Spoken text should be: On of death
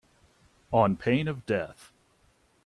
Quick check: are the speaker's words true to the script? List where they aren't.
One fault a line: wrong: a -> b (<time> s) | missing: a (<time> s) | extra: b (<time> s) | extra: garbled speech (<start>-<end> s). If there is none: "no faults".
extra: pain (0.9 s)